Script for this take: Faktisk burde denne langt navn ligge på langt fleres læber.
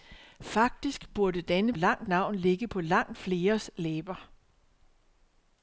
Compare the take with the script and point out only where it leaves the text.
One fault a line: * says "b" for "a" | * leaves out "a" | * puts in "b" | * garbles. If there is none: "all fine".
all fine